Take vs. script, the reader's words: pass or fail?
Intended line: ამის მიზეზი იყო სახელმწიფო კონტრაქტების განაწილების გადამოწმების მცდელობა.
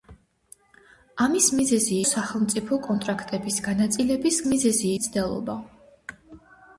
fail